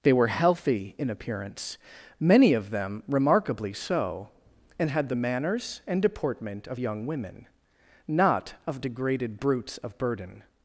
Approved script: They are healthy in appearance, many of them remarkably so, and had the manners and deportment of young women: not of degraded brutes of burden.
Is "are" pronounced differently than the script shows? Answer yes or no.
yes